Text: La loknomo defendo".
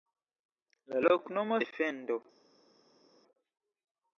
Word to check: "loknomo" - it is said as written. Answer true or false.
true